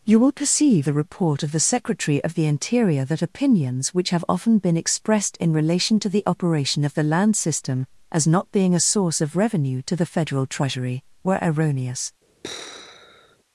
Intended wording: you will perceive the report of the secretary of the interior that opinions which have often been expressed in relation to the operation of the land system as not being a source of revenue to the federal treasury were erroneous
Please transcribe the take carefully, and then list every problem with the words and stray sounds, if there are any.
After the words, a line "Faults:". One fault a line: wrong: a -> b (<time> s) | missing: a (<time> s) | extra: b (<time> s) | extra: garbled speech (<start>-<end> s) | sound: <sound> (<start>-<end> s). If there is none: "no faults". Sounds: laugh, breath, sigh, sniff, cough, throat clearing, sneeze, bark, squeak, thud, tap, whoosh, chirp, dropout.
you will perceive the report of the secretary of the interior that opinions which have often been expressed in relation to the operation of the land system as not being a source of revenue to the federal treasury were erroneous
Faults:
sound: sigh (12.4-13.4 s)